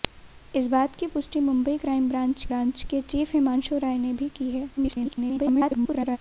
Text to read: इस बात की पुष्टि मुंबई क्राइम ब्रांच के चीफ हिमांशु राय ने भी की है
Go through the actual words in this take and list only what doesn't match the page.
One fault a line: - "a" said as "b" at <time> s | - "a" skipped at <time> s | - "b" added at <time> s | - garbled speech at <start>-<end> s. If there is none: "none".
- "ब्रांच" added at 2.5 s
- garbled speech at 4.8-6.2 s